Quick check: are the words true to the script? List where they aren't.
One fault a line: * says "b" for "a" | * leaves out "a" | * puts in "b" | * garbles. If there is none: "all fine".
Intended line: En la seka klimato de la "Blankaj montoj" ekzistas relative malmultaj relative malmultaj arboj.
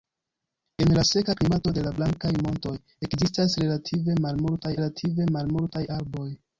all fine